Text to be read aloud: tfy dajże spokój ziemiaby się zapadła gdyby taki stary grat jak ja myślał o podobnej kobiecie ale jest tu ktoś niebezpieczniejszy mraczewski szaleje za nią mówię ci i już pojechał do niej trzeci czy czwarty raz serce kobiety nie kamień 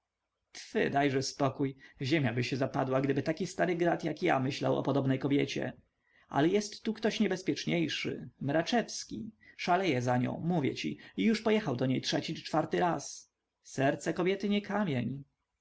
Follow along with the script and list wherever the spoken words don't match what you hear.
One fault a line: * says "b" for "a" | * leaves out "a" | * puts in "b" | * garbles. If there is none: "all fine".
all fine